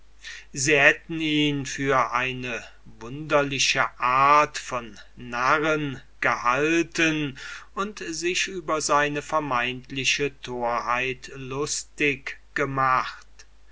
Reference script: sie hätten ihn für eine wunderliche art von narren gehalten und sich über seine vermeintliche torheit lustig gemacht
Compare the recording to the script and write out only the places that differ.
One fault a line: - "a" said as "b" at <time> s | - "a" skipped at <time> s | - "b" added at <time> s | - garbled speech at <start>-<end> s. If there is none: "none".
none